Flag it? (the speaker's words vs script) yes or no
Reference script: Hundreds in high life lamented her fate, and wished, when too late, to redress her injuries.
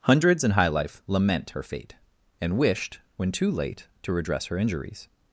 yes